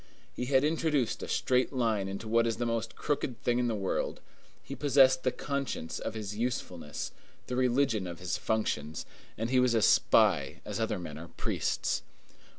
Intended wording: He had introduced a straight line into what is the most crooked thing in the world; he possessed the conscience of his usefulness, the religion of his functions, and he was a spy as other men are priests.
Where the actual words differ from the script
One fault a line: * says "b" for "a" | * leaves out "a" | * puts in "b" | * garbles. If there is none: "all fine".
all fine